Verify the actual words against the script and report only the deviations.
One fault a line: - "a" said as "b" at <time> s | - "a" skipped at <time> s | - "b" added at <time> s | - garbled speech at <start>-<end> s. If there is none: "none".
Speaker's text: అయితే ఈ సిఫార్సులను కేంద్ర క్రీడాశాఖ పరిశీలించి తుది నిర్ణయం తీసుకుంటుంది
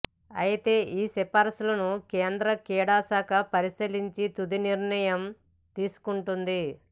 none